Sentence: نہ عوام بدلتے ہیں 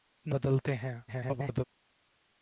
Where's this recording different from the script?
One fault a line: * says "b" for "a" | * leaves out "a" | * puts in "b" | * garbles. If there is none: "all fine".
* leaves out "عوام"
* garbles